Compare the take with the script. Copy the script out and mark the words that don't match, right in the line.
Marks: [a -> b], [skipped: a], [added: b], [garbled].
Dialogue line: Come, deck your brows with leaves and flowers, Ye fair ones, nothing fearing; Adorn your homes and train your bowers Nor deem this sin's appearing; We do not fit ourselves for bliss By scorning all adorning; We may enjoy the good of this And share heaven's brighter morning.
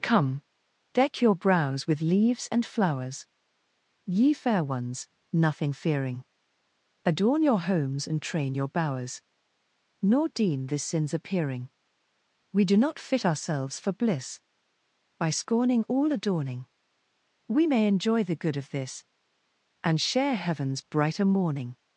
Come, deck your brows with leaves and flowers, Ye fair ones, nothing fearing; Adorn your homes and train your bowers Nor deem this sin's appearing; We do not fit ourselves for bliss By scorning all adorning; We may enjoy the good of this And share heaven's brighter morning.